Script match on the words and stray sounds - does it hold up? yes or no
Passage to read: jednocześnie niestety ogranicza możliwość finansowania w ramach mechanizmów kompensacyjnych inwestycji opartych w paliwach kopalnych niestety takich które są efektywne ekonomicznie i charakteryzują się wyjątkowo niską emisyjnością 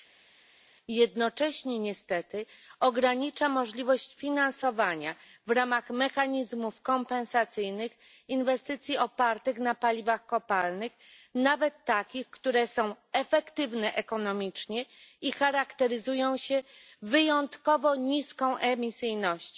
no